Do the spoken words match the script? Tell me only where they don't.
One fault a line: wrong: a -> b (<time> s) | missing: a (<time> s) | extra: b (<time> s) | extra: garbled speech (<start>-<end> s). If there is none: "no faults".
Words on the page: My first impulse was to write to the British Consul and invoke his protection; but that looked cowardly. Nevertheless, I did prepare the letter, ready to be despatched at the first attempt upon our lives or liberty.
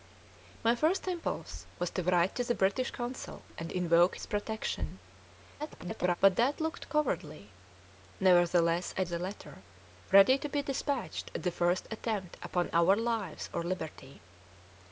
extra: garbled speech (5.6-6.2 s)
missing: did prepare (9.0 s)